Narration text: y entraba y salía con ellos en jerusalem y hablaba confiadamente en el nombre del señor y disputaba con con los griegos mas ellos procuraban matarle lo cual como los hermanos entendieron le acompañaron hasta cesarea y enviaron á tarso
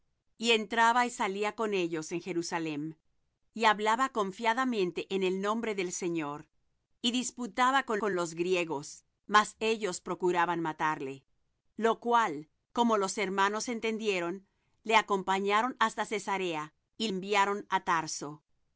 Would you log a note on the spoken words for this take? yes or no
no